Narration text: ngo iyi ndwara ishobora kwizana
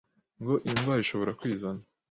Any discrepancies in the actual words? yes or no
no